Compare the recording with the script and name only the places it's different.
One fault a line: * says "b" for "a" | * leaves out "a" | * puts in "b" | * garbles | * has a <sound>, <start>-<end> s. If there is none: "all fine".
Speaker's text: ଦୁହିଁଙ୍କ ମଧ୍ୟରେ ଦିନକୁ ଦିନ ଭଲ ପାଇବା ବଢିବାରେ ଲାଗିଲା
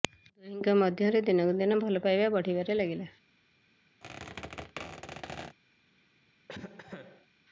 * has a squeak, 4.0-5.6 s
* has a cough, 6.5-7.3 s